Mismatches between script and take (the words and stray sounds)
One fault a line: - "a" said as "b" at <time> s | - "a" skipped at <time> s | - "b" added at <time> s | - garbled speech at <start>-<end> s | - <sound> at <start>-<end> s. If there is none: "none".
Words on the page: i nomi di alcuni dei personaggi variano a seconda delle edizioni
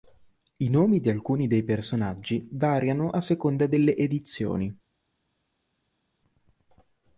none